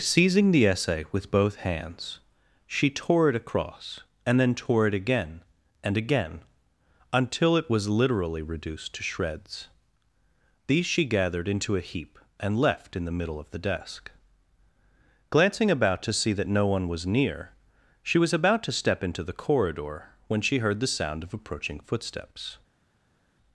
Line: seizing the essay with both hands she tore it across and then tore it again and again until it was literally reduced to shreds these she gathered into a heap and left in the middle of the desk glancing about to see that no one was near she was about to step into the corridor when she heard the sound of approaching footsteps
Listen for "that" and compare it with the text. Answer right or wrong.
right